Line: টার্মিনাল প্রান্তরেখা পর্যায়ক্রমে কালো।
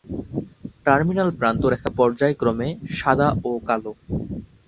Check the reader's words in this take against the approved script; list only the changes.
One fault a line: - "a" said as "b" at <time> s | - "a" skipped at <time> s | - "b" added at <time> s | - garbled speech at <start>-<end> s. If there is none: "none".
- "সাদা ও" added at 3.0 s